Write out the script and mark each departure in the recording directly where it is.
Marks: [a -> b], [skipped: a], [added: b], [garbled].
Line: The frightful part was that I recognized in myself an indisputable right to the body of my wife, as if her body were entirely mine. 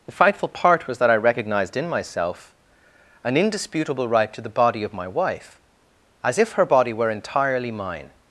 The frightful part was that I recognized in myself an indisputable right to the body of my wife, as if her body were entirely mine.